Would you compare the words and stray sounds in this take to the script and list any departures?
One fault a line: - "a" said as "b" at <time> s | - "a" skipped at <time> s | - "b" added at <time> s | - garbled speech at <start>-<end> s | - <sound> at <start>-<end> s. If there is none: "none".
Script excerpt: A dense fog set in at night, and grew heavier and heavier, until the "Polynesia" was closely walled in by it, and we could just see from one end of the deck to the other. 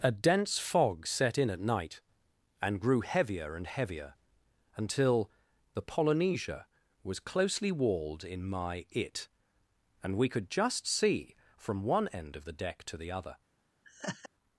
- "by" said as "my" at 8.4 s
- laugh at 13.8-14.3 s